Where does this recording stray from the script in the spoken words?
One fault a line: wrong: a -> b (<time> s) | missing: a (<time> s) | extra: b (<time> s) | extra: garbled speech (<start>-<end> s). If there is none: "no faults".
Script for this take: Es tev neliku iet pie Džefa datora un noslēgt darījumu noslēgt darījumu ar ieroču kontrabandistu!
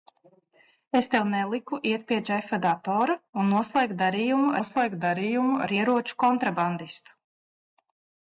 no faults